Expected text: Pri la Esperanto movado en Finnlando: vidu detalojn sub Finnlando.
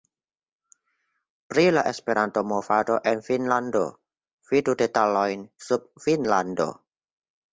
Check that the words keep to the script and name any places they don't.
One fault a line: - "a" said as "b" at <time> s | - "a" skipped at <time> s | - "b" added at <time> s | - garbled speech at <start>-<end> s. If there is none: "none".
none